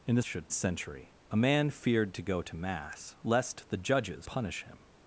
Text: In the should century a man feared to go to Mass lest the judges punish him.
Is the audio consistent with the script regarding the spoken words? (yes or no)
yes